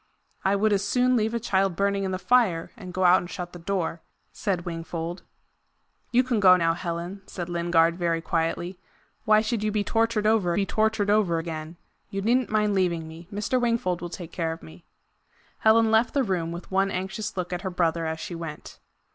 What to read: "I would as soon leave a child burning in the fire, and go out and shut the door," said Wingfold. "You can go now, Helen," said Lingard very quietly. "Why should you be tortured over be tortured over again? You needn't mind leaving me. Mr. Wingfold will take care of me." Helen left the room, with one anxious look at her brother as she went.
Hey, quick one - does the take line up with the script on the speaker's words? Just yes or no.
yes